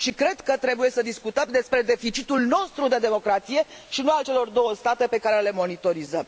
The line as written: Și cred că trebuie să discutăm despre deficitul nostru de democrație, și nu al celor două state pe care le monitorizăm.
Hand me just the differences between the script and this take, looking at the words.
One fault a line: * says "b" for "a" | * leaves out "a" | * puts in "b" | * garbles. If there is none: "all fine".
all fine